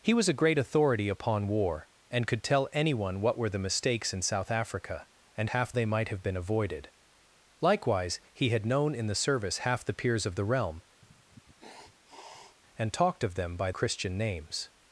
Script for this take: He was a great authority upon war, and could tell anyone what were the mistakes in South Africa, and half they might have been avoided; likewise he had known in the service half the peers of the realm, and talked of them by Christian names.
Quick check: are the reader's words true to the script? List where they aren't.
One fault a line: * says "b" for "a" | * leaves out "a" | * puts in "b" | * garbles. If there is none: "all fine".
all fine